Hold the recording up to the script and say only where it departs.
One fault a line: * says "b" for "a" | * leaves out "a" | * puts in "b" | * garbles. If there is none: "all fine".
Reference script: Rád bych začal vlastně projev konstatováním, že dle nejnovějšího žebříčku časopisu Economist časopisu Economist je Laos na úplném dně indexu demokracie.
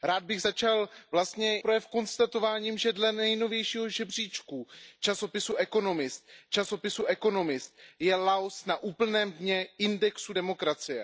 all fine